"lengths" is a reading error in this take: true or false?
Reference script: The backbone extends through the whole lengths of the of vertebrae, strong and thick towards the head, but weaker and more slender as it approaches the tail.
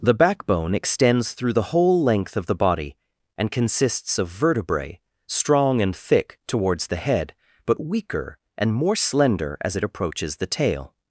true